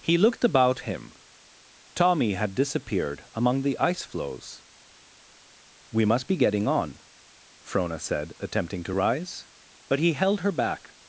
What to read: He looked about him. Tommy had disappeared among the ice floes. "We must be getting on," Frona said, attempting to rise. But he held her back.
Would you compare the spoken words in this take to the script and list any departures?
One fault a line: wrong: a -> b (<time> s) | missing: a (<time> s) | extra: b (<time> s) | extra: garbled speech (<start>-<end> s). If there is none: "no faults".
no faults